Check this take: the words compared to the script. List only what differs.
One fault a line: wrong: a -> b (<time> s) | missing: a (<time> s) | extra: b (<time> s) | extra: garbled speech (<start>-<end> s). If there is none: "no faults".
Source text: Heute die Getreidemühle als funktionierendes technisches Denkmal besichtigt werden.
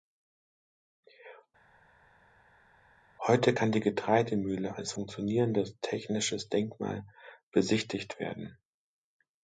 extra: kann (3.5 s)